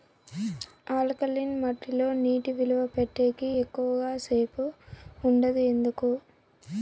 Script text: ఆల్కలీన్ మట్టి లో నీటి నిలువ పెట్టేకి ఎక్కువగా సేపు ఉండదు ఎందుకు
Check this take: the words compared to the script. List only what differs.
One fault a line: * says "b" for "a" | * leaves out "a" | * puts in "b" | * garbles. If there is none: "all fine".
all fine